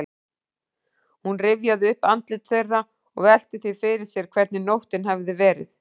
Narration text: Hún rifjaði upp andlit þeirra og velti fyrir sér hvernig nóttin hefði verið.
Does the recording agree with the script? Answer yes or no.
no